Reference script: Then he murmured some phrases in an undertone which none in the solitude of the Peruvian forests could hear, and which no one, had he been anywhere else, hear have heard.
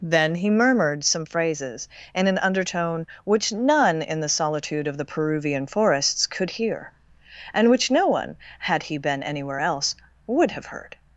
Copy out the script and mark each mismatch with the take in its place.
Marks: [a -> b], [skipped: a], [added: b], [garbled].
Then he murmured some phrases in an undertone which none in the solitude of the Peruvian forests could hear, and which no one, had he been anywhere else, [hear -> would] have heard.